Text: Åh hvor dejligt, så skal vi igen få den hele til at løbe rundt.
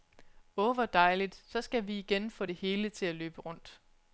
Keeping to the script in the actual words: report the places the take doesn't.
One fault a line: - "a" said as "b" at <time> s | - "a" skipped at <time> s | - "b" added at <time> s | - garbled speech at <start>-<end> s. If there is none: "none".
- "den" said as "det" at 2.4 s